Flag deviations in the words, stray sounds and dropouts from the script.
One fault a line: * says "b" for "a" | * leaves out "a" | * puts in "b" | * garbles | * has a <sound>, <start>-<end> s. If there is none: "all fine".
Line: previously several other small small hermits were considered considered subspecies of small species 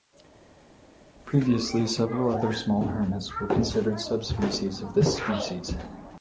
* leaves out "small"
* leaves out "considered"
* says "this" for "small"